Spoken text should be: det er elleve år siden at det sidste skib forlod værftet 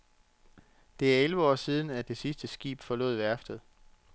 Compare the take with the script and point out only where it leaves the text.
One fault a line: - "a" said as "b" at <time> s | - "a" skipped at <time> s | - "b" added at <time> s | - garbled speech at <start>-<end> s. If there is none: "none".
none